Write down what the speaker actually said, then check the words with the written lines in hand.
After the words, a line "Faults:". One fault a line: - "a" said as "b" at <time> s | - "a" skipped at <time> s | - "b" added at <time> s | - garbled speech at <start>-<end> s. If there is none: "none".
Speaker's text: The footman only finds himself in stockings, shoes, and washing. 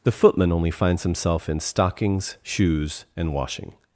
The footman only finds himself in stockings, shoes, and washing.
Faults:
none